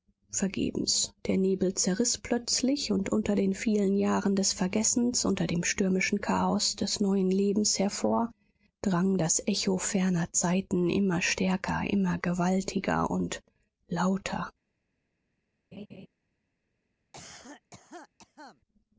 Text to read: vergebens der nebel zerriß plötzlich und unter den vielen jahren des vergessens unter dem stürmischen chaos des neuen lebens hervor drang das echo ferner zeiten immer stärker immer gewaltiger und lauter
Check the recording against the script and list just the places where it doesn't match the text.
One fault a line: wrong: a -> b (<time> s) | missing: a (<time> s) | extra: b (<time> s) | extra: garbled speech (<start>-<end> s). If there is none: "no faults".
no faults